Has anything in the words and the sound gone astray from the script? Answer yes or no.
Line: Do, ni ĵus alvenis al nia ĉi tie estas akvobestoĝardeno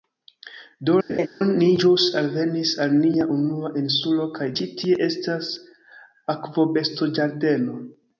yes